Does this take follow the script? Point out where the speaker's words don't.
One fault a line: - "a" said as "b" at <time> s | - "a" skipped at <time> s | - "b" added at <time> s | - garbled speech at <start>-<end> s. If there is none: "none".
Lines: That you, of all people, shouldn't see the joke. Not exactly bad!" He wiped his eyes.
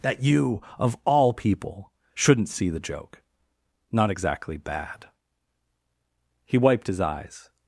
none